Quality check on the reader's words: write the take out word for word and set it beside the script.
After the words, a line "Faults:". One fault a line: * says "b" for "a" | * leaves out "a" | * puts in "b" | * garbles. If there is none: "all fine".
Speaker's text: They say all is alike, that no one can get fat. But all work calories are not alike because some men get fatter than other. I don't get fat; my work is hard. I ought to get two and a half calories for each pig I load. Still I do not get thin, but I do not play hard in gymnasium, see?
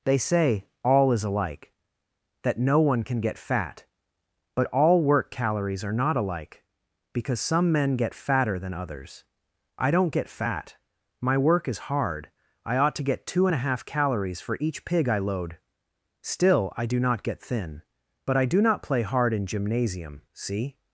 They say all is alike, that no one can get fat. But all work calories are not alike because some men get fatter than others. I don't get fat; my work is hard. I ought to get two and a half calories for each pig I load. Still I do not get thin, but I do not play hard in gymnasium, see?
Faults:
* says "others" for "other"